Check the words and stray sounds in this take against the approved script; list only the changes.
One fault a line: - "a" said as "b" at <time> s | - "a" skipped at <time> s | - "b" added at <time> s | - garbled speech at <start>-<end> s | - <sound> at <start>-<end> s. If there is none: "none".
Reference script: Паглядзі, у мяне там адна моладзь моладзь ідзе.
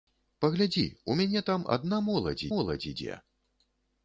none